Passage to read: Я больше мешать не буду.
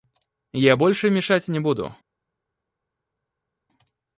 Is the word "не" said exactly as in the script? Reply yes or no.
yes